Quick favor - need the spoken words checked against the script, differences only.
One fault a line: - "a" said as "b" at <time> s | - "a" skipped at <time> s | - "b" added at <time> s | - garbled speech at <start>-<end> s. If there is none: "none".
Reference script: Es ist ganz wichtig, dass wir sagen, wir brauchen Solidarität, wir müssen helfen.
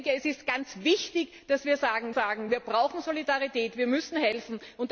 - "sagen" added at 2.1 s